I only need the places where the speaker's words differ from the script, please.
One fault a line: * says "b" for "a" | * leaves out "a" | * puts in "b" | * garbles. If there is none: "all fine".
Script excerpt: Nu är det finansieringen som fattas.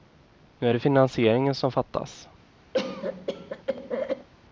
all fine